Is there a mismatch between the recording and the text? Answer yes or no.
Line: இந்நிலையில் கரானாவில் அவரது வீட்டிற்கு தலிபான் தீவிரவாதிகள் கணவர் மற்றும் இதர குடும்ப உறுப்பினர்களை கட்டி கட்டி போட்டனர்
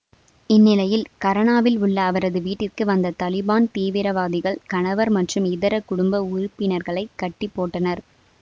yes